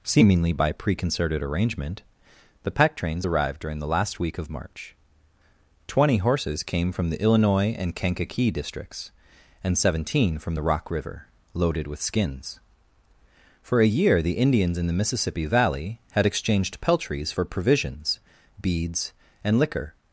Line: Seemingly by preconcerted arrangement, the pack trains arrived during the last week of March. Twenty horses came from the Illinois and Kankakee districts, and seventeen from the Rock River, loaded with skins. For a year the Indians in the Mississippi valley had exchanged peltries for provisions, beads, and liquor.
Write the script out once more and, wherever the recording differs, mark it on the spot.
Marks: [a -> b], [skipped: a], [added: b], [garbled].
Seemingly by preconcerted arrangement, the pack trains arrived during the last week of March. Twenty horses came from the Illinois and Kankakee districts, and seventeen from the Rock River, loaded with skins. For a year the Indians in the Mississippi valley had exchanged peltries for provisions, beads, and liquor.